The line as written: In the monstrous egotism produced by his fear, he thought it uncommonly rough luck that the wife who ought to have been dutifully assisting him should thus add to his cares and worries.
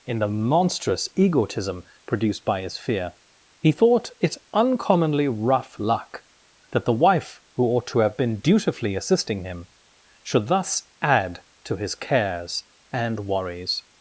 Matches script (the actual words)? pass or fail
pass